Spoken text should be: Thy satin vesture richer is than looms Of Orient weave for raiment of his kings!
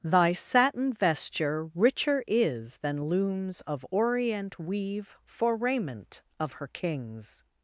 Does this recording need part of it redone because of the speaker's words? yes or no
yes